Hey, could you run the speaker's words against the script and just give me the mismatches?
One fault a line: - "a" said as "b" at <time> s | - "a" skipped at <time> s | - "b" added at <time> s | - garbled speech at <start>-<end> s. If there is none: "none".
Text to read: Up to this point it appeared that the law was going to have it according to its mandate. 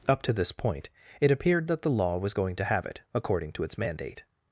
none